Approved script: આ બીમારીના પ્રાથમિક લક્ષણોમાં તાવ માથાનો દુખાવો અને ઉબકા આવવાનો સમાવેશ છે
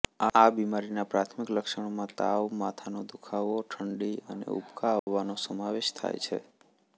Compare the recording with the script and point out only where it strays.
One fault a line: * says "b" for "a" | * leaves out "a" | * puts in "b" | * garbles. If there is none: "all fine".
* puts in "ઠંડી"
* puts in "થાય"